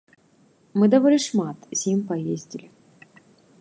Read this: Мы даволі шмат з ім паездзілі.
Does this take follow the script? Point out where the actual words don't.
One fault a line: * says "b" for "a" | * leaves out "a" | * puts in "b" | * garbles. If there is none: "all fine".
all fine